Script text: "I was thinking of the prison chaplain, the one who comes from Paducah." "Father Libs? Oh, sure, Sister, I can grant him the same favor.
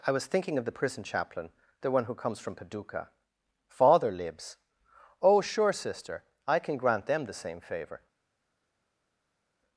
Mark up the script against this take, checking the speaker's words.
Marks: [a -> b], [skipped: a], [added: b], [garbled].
"I was thinking of the prison chaplain, the one who comes from Paducah." "Father Libs? Oh, sure, Sister, I can grant [him -> them] the same favor.